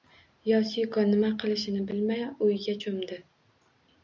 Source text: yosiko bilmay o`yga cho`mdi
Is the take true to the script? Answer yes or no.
no